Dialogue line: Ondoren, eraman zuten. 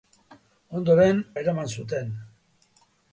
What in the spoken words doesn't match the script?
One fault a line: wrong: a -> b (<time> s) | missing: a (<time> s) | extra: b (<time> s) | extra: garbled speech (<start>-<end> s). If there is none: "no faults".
no faults